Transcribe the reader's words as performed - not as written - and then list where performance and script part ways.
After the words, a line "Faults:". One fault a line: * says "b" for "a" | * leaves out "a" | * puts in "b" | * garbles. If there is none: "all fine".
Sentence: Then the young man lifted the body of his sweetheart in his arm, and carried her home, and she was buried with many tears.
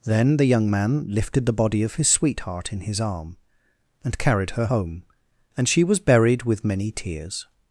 Then the young man lifted the body of his sweetheart in his arm, and carried her home, and she was buried with many tears.
Faults:
all fine